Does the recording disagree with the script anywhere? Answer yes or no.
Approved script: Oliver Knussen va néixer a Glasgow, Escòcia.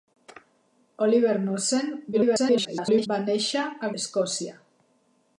yes